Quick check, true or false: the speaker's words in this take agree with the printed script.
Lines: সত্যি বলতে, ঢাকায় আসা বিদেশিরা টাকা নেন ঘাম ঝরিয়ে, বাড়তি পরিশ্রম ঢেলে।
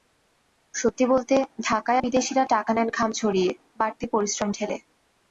false